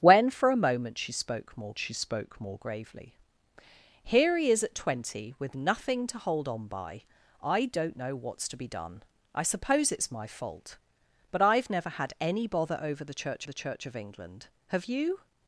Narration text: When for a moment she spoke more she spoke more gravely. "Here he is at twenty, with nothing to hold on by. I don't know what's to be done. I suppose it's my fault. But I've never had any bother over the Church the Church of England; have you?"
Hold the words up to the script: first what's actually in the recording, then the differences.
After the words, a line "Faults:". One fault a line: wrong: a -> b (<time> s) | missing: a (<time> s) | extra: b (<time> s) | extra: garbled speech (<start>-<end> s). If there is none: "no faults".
When for a moment she spoke more she spoke more gravely. "Here he is at twenty, with nothing to hold on by. I don't know what's to be done. I suppose it's my fault. But I've never had any bother over the Church the Church of England; have you?"
Faults:
no faults